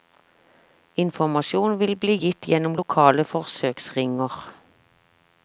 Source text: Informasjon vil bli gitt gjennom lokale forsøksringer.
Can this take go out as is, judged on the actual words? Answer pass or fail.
pass